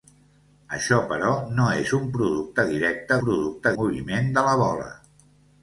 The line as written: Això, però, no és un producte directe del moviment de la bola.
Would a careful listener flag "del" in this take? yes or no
yes